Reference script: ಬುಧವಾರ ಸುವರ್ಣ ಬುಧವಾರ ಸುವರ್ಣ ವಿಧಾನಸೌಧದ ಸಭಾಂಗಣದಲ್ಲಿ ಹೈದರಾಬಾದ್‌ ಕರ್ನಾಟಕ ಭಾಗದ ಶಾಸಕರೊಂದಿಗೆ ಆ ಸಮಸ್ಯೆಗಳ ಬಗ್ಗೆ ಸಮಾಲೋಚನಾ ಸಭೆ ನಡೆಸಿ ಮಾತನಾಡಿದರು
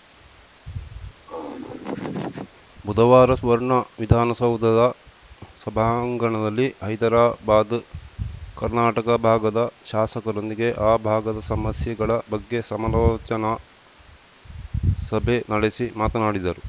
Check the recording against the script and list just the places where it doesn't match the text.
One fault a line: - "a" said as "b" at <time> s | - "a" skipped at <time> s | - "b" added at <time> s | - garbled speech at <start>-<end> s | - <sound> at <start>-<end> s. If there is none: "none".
- laugh at 1.3-2.6 s
- "ಬುಧವಾರ ಸುವರ್ಣ" skipped at 3.7 s
- "ಭಾಗದ" added at 11.1 s